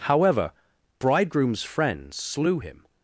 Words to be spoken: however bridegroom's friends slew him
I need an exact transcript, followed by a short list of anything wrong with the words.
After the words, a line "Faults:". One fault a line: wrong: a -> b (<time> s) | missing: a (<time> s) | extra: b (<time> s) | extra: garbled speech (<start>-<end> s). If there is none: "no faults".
however bridegroom's friends slew him
Faults:
no faults